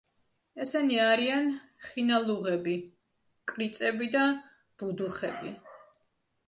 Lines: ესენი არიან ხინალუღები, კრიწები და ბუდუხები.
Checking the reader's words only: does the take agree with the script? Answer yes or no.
yes